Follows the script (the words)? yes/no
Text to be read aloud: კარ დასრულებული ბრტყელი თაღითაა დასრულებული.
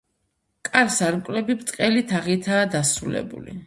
no